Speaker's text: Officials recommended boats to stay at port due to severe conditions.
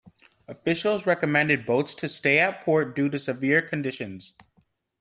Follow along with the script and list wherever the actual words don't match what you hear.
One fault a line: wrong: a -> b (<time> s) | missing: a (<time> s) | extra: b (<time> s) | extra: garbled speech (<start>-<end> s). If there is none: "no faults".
no faults